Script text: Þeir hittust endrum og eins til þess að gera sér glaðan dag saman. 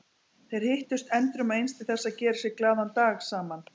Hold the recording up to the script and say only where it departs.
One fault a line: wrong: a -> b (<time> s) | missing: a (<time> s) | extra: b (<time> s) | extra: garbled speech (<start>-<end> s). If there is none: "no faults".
no faults